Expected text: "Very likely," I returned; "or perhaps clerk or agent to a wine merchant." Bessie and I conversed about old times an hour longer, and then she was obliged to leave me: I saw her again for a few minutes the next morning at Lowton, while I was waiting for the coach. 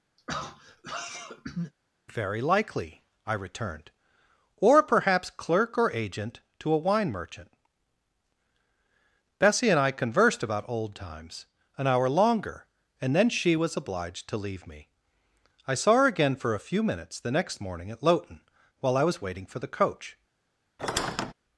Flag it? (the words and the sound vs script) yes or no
yes